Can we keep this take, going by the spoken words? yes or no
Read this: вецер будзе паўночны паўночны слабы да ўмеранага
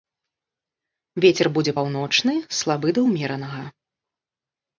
no